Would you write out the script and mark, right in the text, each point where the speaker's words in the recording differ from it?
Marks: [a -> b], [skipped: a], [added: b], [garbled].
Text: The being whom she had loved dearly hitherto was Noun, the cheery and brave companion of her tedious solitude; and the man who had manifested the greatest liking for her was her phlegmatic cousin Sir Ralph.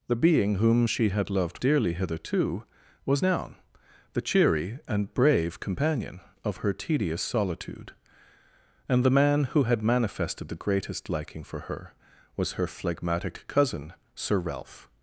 The being whom she had loved dearly hitherto was Noun, the cheery and brave companion of her tedious solitude; and the man who had manifested the greatest liking for her was her phlegmatic cousin Sir Ralph.